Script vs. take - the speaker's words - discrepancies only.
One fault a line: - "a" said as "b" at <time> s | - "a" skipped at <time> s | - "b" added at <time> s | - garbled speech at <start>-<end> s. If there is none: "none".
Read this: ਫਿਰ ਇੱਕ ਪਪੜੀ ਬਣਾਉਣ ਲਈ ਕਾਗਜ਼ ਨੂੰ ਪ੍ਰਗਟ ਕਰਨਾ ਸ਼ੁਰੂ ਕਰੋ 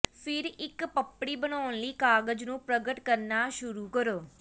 none